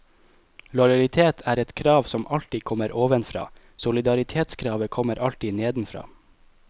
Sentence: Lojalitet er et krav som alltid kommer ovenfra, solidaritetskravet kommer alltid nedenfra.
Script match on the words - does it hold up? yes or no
yes